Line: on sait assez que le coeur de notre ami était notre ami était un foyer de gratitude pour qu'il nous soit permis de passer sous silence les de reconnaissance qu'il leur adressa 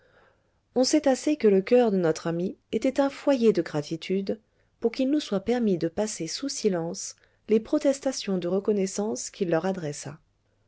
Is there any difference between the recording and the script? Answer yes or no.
yes